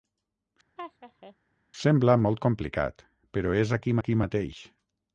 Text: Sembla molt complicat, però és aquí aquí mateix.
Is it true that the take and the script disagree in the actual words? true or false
false